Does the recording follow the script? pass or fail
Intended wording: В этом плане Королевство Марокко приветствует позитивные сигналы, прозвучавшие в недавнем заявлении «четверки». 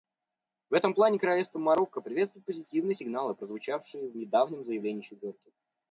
pass